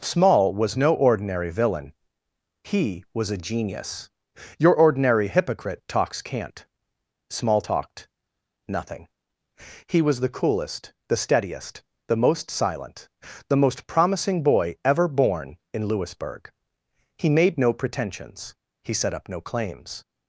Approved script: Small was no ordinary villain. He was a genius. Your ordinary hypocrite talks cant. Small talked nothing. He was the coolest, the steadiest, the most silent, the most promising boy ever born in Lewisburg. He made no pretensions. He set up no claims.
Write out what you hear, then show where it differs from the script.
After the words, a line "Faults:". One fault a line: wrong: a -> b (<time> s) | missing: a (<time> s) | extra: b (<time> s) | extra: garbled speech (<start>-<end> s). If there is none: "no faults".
Small was no ordinary villain. He was a genius. Your ordinary hypocrite talks cant. Small talked nothing. He was the coolest, the steadiest, the most silent, the most promising boy ever born in Lewisburg. He made no pretensions. He set up no claims.
Faults:
no faults